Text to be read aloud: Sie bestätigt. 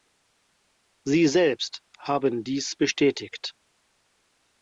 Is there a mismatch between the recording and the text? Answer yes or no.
yes